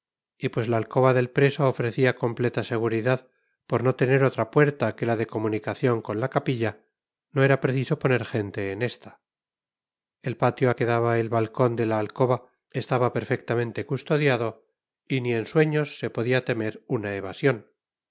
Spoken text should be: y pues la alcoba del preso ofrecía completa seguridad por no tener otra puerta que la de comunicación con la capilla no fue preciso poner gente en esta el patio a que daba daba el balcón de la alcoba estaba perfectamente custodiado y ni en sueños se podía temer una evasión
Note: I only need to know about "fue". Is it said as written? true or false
false